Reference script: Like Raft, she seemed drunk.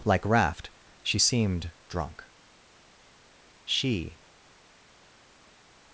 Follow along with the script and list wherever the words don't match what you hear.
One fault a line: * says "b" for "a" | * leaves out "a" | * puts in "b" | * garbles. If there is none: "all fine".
* puts in "She"